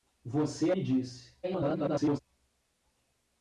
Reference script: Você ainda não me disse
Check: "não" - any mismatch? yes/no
yes